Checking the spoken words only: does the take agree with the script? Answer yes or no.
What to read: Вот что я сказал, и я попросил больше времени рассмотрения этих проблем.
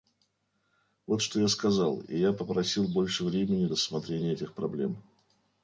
yes